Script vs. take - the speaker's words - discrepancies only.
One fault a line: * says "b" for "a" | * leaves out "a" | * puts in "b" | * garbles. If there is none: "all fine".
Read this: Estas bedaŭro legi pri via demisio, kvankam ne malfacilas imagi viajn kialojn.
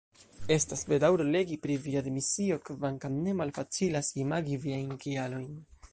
all fine